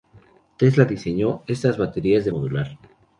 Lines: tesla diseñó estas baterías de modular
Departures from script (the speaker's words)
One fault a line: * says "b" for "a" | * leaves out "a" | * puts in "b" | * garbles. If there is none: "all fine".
all fine